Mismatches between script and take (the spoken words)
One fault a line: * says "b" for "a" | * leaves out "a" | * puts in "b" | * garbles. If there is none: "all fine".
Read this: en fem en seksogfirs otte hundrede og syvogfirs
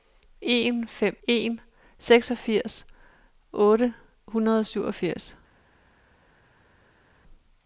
all fine